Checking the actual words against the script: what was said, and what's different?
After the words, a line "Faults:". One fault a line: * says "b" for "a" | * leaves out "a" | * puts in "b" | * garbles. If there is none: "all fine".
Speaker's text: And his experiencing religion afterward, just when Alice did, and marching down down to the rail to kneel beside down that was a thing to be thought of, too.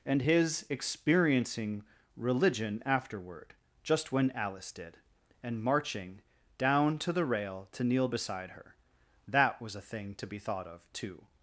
And his experiencing religion afterward, just when Alice did, and marching down to the rail to kneel beside her that was a thing to be thought of, too.
Faults:
* leaves out "down"
* says "her" for "down"